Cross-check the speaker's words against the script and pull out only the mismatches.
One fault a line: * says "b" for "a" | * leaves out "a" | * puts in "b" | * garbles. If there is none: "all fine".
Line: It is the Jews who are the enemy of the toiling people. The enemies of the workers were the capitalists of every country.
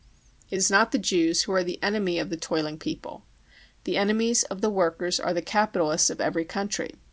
* puts in "not"
* says "are" for "were"